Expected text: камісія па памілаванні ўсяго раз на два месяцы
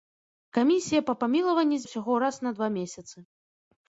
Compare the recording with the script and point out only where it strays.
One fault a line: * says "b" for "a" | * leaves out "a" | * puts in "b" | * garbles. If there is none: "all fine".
all fine